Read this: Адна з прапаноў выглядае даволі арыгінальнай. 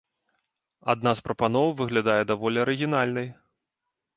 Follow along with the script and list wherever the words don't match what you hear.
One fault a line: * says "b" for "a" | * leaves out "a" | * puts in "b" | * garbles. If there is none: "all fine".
all fine